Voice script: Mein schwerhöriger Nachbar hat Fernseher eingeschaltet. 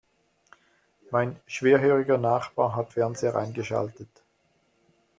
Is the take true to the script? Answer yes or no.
yes